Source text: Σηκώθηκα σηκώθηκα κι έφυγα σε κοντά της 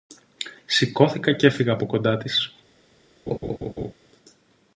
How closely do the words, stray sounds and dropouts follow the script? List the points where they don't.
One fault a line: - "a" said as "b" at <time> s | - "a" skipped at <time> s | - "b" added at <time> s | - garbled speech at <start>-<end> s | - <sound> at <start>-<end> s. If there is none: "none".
- "σηκώθηκα" skipped at 1.3 s
- "σε" said as "από" at 1.7 s
- laugh at 3.3-3.9 s